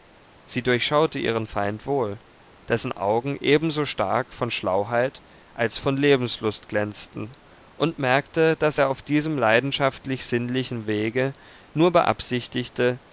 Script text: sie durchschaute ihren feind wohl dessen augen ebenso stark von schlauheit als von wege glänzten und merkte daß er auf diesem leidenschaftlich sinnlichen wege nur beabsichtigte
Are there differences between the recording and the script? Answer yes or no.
yes